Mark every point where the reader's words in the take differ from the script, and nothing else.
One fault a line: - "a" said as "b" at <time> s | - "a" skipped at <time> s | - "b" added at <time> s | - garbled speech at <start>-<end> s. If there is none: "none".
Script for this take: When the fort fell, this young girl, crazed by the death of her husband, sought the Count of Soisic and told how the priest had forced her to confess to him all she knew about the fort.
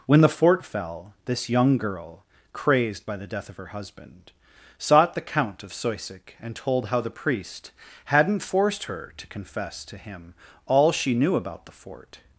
- "had" said as "hadn't" at 8.1 s